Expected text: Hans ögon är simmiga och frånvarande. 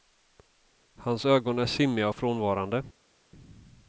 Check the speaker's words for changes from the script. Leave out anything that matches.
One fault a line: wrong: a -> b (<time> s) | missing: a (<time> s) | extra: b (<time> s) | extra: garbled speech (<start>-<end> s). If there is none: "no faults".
no faults